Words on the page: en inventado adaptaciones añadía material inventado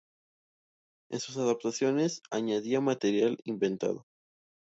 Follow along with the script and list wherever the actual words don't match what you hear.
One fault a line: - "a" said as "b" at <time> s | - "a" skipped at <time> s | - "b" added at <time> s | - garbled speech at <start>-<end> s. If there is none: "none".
- "inventado" said as "sus" at 1.2 s